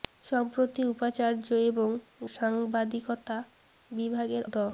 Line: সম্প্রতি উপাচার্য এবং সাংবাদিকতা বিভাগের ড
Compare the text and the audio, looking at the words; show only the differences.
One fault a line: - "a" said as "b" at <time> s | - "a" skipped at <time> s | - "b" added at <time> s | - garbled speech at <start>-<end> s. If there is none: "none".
none